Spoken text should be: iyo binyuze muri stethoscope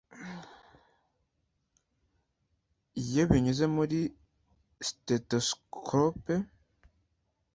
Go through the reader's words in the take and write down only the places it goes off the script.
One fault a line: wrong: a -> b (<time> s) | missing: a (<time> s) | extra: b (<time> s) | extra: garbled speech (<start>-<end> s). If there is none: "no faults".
no faults